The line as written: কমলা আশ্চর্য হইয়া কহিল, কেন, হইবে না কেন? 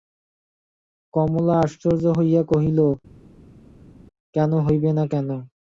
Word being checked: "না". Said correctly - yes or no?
yes